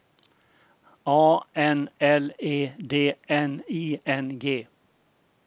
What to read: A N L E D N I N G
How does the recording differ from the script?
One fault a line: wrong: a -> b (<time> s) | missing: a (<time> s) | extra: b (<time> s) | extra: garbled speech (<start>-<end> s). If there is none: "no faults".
no faults